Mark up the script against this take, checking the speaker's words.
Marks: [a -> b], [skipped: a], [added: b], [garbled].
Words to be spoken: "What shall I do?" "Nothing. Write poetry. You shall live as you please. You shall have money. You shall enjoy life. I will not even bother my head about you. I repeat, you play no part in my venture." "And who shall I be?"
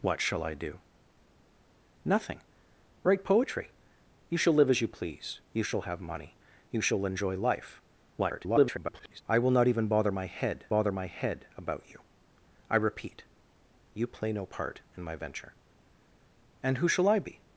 "What shall I do?" "Nothing. Write poetry. You shall live as you please. You shall have money. You shall enjoy life. [garbled] I will not even bother my head [added: bother my head] about you. I repeat, you play no part in my venture." "And who shall I be?"